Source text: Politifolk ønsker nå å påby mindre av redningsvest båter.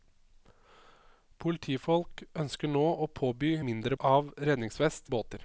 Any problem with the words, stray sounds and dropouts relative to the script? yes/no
no